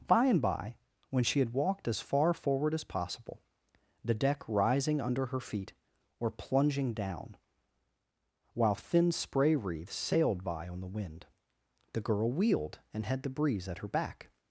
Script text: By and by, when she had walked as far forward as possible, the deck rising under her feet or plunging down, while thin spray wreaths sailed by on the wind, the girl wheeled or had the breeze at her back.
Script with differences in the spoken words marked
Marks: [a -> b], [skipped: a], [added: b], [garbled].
By and by, when she had walked as far forward as possible, the deck rising under her feet or plunging down, while thin spray wreaths sailed by on the wind, the girl wheeled [or -> and] had the breeze at her back.